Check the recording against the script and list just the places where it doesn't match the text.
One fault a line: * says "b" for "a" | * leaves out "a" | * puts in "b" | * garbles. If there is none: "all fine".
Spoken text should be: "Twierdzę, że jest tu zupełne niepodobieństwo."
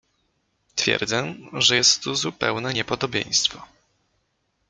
all fine